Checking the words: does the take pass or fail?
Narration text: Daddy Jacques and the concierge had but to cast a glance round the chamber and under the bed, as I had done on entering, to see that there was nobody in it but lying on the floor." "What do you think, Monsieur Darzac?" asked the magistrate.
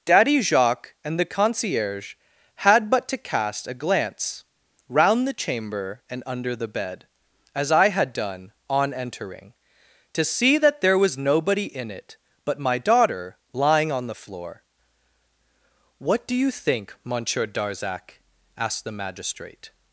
fail